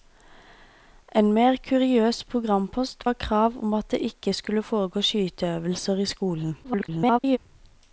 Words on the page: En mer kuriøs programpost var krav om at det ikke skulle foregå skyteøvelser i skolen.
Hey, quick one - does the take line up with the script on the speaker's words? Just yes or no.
no